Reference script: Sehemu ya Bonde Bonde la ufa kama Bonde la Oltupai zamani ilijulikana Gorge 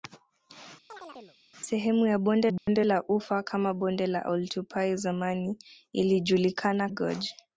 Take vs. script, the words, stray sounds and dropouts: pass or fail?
fail